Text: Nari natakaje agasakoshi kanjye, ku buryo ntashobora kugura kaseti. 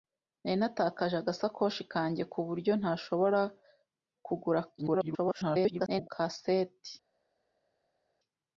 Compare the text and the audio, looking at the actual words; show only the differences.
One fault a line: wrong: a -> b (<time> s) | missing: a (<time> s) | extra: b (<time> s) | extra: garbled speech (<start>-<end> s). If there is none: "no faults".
extra: garbled speech (4.8-6.1 s)